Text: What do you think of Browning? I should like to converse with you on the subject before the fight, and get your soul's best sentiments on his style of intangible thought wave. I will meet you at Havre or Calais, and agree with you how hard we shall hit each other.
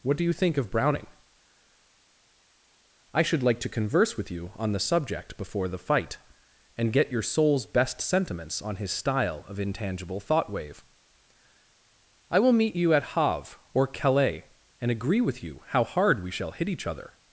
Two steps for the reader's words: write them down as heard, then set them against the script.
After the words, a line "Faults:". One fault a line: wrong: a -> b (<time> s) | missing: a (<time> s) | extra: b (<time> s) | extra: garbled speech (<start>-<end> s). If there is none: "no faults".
What do you think of Browning? I should like to converse with you on the subject before the fight, and get your soul's best sentiments on his style of intangible thought wave. I will meet you at Havre or Calais, and agree with you how hard we shall hit each other.
Faults:
no faults